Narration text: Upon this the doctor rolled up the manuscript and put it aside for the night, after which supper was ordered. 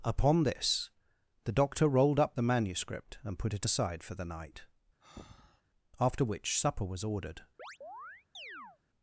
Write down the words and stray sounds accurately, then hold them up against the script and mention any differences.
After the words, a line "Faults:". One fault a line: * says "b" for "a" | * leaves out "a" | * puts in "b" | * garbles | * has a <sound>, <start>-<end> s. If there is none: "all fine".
Upon this the doctor rolled up the manuscript and put it aside for the night, after which supper was ordered.
Faults:
* has a breath, 5.0-5.6 s
* has a chirp, 7.6-8.8 s